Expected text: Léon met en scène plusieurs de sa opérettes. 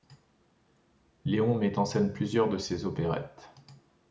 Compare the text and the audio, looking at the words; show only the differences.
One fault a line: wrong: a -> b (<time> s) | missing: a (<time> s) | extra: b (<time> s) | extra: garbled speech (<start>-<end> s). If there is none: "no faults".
wrong: sa -> ses (2.6 s)